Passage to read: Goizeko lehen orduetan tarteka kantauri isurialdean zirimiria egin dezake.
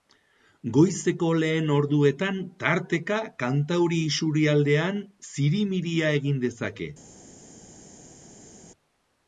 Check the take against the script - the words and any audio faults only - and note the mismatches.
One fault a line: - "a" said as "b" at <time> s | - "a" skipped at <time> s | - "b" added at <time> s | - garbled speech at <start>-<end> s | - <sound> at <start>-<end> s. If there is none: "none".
none